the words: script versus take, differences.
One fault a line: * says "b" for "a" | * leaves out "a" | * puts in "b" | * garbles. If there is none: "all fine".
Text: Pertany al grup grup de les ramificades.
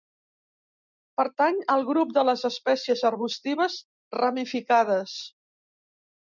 * leaves out "grup"
* puts in "espècies arbustives"